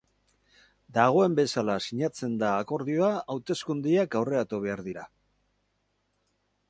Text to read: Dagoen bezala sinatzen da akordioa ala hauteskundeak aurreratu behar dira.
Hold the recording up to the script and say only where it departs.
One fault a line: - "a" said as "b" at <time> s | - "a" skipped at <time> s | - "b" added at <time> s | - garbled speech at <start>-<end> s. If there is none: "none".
- "ala" skipped at 3.1 s